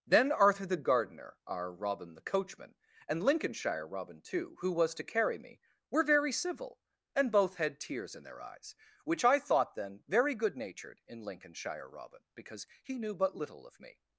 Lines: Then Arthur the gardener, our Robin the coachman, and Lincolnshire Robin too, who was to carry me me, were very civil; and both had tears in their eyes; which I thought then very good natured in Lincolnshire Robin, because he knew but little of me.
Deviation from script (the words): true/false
true